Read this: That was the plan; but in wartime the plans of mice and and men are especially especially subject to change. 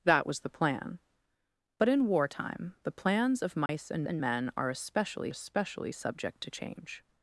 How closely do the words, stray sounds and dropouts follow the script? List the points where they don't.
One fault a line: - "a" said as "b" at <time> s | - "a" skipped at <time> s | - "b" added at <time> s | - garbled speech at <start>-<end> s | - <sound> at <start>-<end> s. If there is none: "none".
- dropout at 3.7-3.7 s